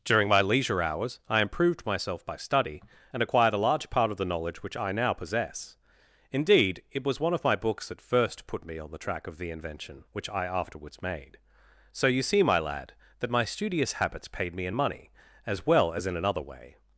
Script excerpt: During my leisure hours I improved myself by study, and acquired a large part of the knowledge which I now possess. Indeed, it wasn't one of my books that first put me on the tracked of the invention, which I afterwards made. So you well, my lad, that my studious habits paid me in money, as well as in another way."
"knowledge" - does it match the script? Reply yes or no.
yes